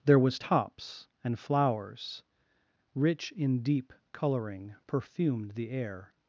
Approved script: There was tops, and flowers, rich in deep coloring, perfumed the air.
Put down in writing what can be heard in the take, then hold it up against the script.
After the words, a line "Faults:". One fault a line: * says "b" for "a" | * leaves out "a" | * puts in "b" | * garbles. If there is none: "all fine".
There was tops, and flowers, rich in deep coloring, perfumed the air.
Faults:
all fine